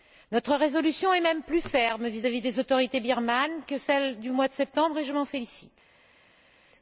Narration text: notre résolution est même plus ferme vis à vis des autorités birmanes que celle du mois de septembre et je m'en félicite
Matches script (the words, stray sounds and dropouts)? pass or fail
pass